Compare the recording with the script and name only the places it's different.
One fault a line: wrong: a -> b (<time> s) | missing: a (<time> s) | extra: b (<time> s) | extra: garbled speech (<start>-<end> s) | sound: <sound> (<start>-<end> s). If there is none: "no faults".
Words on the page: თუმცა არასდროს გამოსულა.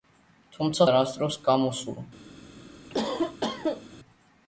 sound: cough (2.9-4.0 s)